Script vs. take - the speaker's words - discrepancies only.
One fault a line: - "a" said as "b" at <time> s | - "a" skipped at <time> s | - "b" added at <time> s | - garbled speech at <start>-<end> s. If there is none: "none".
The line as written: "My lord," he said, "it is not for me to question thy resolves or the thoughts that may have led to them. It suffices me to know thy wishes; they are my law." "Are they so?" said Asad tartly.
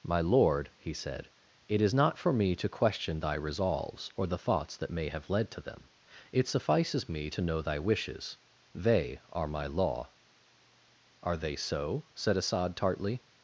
none